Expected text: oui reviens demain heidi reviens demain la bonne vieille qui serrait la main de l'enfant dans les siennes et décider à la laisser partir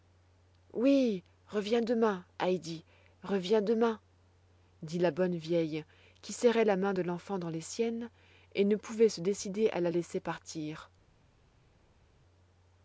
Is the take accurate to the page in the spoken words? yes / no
no